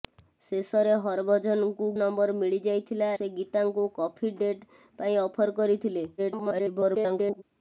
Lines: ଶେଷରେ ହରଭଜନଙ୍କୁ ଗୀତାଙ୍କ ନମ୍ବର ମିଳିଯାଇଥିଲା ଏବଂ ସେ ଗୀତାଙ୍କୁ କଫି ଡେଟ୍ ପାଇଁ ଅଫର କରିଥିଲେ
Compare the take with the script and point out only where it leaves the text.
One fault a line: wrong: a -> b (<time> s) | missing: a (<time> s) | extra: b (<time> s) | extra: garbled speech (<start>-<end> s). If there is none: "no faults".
missing: ଗୀତାଙ୍କ (1.9 s)
missing: ଏବଂ (3.1 s)
extra: garbled speech (6.2-7.4 s)